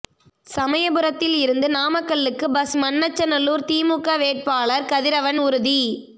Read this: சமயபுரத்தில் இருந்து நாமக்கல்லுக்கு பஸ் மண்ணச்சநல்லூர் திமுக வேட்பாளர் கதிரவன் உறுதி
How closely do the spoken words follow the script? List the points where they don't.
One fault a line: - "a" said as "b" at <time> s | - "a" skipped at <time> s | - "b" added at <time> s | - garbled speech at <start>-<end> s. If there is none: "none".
none